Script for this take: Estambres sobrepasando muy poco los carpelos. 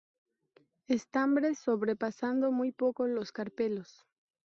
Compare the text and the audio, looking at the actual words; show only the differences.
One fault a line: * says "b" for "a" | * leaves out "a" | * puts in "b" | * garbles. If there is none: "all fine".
all fine